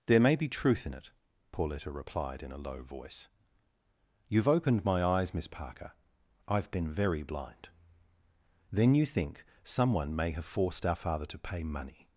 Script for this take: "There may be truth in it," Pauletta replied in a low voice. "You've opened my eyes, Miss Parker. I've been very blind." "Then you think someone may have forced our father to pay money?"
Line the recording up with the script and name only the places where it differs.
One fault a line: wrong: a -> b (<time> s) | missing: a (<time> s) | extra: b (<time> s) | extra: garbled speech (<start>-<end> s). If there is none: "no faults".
no faults